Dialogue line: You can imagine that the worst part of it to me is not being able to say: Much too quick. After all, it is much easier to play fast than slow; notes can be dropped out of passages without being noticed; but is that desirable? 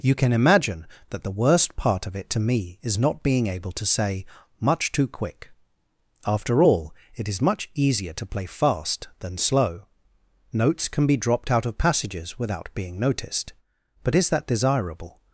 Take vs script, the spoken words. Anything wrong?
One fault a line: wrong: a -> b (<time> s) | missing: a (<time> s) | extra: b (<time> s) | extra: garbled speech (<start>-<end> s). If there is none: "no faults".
no faults